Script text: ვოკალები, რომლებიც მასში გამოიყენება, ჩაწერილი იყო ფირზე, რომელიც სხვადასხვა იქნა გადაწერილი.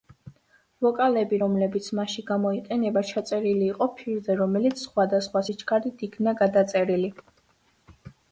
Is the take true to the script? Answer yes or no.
no